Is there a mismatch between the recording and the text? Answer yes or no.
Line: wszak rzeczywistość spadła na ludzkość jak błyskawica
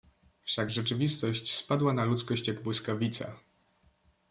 no